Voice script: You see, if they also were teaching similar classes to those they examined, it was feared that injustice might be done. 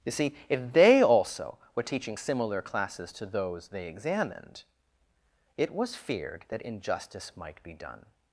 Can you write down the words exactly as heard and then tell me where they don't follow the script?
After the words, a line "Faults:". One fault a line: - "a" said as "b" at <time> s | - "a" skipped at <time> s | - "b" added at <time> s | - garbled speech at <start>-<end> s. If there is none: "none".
You see, if they also were teaching similar classes to those they examined, it was feared that injustice might be done.
Faults:
none